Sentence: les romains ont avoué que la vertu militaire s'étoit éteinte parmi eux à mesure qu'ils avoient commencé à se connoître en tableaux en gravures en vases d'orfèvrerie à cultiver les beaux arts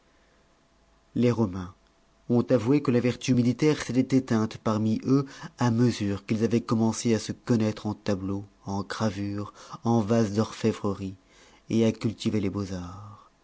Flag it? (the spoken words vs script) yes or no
no